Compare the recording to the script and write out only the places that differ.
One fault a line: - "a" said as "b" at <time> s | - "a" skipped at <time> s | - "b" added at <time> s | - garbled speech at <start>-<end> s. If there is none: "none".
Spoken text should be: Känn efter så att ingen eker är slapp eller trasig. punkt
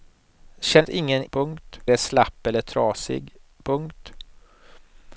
- "efter så" skipped at 0.8 s
- "eker" said as "punkt" at 1.3 s